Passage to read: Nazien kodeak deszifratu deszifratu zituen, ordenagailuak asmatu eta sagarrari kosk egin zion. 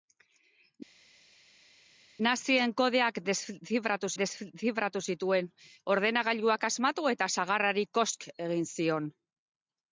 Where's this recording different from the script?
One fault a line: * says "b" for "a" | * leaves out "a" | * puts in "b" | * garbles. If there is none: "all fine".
all fine